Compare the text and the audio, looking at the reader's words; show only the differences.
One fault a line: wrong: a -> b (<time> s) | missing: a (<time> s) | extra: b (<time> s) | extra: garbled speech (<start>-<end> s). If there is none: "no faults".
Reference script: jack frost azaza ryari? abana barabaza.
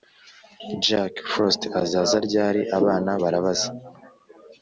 no faults